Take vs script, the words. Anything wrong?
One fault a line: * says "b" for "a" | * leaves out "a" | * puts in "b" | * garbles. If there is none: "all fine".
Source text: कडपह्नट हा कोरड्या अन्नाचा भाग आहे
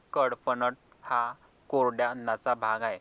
all fine